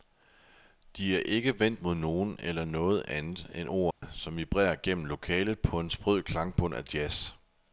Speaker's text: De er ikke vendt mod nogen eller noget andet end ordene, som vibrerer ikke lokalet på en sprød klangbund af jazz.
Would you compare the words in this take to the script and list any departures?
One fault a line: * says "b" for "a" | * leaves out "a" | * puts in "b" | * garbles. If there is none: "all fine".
* says "gennem" for "ikke"